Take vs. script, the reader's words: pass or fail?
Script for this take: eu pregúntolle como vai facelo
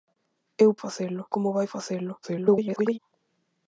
fail